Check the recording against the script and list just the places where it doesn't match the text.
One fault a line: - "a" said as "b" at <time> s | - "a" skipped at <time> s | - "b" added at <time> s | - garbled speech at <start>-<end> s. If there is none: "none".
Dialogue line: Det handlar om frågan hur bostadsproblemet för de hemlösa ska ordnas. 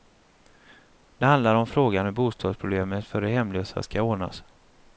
none